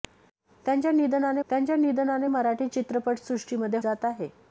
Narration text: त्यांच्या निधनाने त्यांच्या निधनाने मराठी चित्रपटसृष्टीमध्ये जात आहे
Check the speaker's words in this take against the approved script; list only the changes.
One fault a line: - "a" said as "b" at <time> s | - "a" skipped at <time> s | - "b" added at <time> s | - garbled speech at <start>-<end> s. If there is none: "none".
none